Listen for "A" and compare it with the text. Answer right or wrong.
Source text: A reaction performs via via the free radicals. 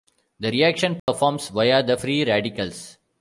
wrong